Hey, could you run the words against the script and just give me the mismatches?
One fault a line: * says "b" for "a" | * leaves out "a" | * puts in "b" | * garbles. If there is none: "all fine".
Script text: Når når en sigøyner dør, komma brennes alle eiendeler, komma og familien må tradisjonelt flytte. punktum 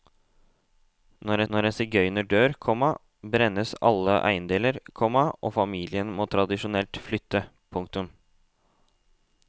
all fine